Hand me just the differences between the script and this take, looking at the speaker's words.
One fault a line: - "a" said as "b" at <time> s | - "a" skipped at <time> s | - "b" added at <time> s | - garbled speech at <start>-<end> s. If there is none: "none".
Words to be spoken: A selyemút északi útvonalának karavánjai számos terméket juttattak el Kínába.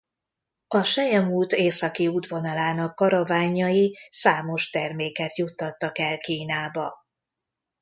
none